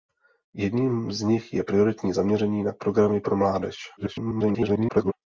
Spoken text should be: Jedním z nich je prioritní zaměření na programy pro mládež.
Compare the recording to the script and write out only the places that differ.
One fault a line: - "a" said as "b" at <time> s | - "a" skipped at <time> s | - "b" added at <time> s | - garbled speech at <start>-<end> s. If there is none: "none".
- garbled speech at 4.0-5.1 s